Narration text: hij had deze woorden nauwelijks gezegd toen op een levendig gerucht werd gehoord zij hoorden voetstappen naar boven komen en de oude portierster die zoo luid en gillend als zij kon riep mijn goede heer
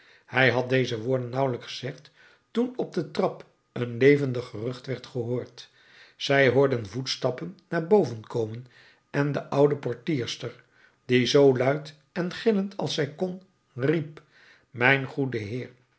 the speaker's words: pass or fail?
fail